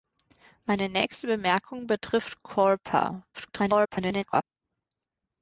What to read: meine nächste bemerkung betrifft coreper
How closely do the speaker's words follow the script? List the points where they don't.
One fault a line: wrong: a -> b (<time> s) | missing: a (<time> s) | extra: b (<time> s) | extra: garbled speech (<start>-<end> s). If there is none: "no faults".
extra: garbled speech (3.3-4.4 s)